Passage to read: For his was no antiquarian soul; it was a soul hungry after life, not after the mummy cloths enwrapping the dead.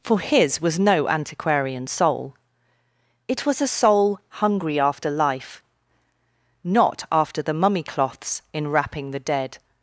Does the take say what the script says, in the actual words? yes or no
yes